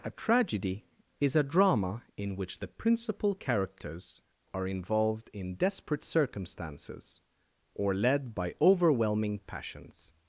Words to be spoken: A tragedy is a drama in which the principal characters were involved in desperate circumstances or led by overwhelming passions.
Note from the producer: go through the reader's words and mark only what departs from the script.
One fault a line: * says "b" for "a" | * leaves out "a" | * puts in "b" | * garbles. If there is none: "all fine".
* says "are" for "were"